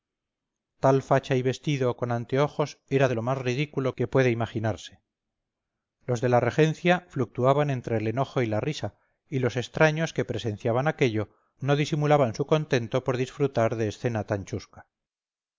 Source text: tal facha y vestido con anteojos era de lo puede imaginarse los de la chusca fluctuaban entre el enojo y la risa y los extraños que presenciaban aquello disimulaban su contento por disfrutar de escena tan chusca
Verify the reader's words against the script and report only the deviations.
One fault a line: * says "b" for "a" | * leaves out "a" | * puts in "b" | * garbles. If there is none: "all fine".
* puts in "más ridículo que"
* says "regencia" for "chusca"
* puts in "no"